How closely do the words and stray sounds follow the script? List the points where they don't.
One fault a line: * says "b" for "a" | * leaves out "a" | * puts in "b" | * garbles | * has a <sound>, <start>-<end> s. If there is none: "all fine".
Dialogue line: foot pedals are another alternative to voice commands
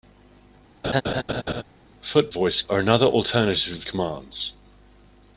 * has a laugh, 0.8-1.6 s
* says "voice" for "pedals"
* leaves out "to voice"